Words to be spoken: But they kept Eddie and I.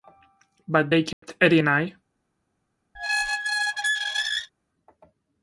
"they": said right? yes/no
yes